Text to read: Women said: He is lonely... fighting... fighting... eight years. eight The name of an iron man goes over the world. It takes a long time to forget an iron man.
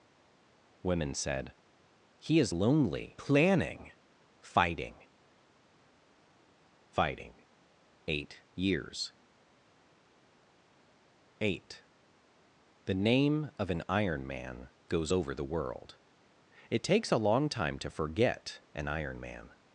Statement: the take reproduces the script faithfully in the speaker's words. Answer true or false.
false